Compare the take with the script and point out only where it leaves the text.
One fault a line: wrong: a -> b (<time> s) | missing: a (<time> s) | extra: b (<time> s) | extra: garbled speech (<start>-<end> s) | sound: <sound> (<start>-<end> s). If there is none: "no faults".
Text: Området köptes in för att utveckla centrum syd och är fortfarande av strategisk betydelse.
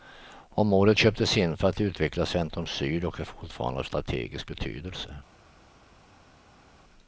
no faults